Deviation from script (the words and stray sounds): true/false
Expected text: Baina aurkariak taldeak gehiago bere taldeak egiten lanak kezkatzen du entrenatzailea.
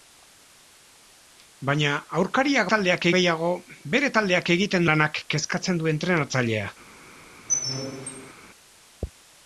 true